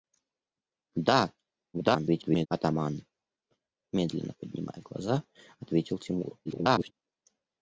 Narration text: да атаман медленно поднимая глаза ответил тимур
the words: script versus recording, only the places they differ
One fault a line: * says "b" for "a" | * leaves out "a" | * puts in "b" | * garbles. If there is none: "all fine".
* garbles
* garbles